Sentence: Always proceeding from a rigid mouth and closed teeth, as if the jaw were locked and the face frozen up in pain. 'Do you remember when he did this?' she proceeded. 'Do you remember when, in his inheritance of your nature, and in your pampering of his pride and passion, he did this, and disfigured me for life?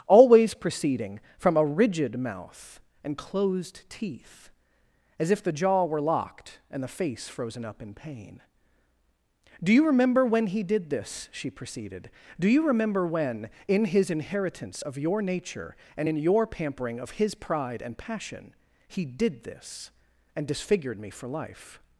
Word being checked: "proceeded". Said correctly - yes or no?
yes